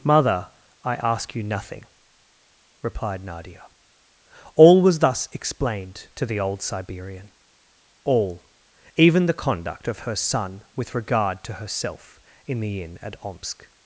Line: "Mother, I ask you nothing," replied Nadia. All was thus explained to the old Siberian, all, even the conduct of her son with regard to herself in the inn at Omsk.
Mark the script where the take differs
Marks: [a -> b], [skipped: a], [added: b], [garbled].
"Mother, I ask you nothing," replied Nadia. All was thus explained to the old Siberian, all, even the conduct of her son with regard to herself in the inn at Omsk.